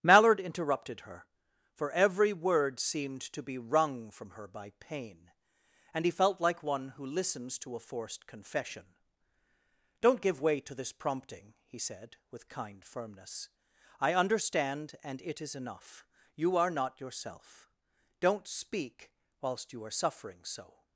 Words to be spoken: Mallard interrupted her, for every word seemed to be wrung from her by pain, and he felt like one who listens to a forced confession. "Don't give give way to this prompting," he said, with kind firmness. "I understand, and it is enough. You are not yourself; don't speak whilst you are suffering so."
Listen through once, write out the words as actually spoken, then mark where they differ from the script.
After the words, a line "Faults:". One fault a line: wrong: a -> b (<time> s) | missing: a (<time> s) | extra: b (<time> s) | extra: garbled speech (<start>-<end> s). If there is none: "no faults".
Mallard interrupted her, for every word seemed to be wrung from her by pain, and he felt like one who listens to a forced confession. "Don't give way to this prompting," he said, with kind firmness. "I understand, and it is enough. You are not yourself; don't speak whilst you are suffering so."
Faults:
missing: give (10.4 s)